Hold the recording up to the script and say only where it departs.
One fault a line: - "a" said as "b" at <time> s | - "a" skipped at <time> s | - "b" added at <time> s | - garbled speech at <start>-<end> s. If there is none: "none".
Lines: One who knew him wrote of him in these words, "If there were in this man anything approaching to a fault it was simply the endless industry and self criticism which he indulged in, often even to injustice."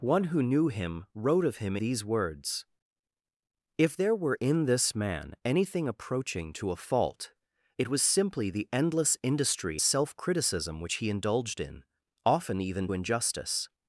- "in" skipped at 1.8 s
- "and" skipped at 9.8 s
- "to" skipped at 12.9 s